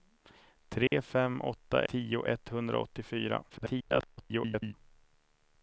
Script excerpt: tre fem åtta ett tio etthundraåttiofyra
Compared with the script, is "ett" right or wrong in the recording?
wrong